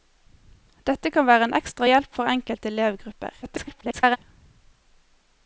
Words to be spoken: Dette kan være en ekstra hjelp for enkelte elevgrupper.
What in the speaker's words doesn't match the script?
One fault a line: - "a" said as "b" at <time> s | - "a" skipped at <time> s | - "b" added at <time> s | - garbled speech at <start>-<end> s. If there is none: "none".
- garbled speech at 3.4-4.2 s